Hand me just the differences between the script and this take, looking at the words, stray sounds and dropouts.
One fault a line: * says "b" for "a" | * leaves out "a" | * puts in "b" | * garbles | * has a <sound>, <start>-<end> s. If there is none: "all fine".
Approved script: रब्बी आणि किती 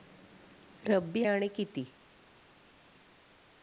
all fine